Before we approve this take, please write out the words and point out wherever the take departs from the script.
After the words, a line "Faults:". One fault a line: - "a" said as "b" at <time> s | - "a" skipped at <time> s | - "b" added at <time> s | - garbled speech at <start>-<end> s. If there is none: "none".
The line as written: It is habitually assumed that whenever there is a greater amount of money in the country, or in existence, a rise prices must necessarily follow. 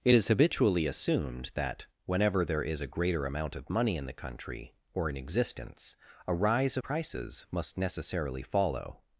It is habitually assumed that whenever there is a greater amount of money in the country, or in existence, a rise prices must necessarily follow.
Faults:
none